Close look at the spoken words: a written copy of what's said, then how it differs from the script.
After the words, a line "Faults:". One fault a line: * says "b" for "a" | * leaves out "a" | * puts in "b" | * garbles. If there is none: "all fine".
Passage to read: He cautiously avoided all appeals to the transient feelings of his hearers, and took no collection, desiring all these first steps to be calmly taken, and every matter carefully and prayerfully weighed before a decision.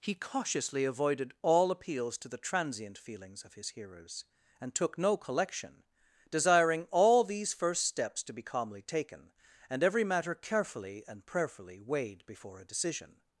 He cautiously avoided all appeals to the transient feelings of his hearers, and took no collection, desiring all these first steps to be calmly taken, and every matter carefully and prayerfully weighed before a decision.
Faults:
all fine